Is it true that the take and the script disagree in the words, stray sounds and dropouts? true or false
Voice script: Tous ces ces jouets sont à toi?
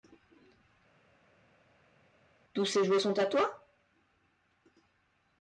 true